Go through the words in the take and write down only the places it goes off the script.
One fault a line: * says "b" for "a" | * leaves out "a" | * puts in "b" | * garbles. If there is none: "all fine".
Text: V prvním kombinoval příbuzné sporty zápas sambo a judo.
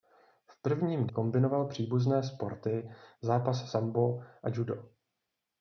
all fine